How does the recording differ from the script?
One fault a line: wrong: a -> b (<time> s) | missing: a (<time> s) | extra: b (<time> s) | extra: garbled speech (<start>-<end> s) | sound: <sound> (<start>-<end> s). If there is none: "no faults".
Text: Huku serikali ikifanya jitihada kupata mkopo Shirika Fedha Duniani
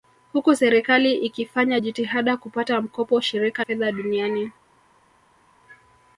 no faults